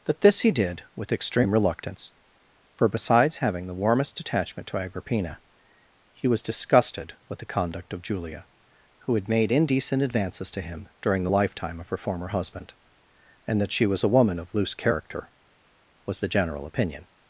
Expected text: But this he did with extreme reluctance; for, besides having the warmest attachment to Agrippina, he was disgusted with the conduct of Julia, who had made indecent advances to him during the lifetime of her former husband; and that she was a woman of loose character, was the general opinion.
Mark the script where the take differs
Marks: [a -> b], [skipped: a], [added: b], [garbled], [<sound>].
[But -> That] this he did with extreme reluctance; for, besides having the warmest attachment to Agrippina, he was disgusted with the conduct of Julia, who had made indecent advances to him during the lifetime of her former husband; and that she was a woman of loose character, was the general opinion.